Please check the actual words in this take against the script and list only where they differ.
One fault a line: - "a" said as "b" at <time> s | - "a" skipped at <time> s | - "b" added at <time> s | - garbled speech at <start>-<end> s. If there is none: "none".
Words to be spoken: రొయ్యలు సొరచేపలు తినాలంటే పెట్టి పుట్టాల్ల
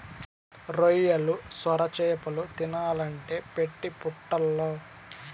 none